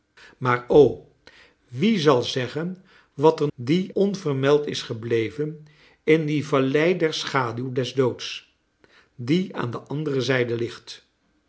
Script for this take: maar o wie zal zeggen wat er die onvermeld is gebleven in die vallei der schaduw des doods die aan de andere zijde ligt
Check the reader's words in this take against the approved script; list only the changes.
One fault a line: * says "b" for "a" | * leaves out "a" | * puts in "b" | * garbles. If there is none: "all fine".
all fine